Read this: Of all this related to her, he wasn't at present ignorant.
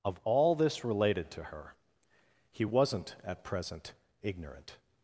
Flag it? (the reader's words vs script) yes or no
no